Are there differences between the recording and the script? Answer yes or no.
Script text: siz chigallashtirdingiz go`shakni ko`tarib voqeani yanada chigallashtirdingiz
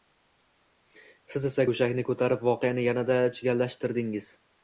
yes